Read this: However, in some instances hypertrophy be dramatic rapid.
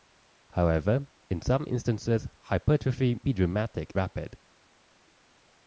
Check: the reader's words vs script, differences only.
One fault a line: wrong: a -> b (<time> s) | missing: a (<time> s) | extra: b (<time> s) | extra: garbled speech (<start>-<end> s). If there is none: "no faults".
no faults